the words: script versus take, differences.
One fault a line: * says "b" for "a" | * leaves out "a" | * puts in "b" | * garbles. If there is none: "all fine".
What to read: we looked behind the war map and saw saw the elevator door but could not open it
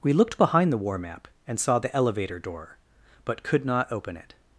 * leaves out "saw"